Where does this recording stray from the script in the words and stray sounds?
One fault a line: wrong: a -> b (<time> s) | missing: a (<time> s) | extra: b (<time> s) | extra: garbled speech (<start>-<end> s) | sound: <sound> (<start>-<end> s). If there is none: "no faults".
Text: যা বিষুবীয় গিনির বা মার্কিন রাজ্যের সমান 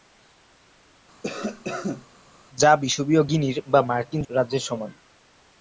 sound: cough (1.2-2.1 s)